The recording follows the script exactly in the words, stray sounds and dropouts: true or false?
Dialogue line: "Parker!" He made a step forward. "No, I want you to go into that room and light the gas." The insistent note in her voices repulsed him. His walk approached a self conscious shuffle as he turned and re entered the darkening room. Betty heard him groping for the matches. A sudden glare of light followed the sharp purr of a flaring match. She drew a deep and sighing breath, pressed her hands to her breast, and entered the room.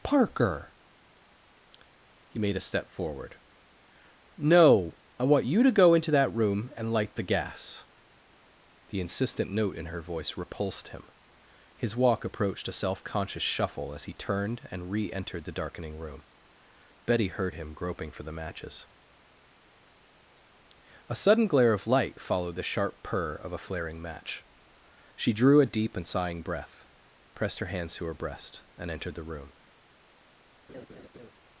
false